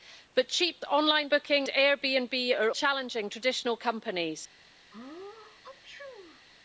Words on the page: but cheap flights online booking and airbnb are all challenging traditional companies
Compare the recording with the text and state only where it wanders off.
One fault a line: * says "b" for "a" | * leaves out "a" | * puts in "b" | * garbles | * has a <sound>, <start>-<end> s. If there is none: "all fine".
* leaves out "flights"
* leaves out "and"
* leaves out "all"
* has a sneeze, 4.9-6.5 s